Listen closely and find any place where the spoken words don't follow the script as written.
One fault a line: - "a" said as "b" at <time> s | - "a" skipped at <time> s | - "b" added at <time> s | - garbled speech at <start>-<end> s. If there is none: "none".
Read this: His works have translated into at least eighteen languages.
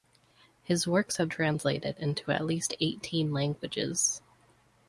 none